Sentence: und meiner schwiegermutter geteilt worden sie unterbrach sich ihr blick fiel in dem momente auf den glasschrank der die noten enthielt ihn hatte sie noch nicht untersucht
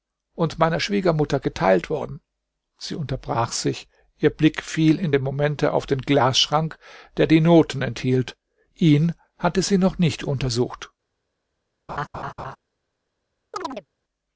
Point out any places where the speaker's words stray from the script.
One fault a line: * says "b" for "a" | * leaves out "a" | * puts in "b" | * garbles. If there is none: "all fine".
all fine